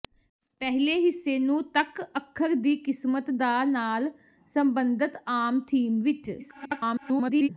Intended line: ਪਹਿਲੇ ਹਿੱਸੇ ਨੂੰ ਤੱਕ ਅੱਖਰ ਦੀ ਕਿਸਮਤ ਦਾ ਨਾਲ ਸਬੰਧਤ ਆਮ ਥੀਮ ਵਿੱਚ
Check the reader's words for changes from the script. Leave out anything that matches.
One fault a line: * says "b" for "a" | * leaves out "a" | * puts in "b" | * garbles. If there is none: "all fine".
* garbles